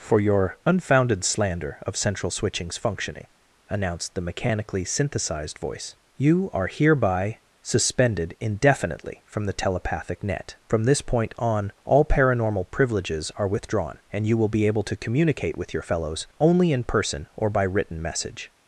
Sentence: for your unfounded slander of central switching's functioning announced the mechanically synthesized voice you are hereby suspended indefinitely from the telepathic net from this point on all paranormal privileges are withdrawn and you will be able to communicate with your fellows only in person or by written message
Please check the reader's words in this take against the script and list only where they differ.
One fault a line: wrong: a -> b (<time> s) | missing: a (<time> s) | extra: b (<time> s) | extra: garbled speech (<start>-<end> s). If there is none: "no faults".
no faults